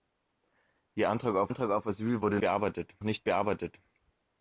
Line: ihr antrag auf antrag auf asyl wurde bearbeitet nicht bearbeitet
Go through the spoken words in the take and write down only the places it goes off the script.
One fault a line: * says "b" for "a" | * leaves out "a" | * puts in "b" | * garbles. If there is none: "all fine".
all fine